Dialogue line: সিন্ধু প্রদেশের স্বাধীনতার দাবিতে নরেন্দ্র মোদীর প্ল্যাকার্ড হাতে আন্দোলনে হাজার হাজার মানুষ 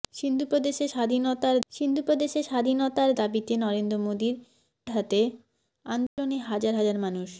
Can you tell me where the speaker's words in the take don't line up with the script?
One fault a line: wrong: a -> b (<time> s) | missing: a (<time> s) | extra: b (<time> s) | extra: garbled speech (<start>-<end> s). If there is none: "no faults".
extra: সিন্ধু প্রদেশের স্বাধীনতার (1.7 s)
missing: প্ল্যাকার্ড (4.3 s)